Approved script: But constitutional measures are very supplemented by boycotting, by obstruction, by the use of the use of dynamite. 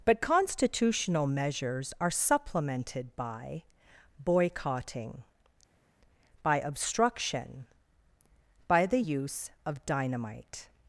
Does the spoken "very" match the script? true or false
false